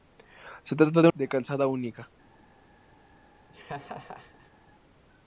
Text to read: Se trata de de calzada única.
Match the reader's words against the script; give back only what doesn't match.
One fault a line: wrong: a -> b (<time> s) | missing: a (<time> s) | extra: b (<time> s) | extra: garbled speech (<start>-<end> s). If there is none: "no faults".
no faults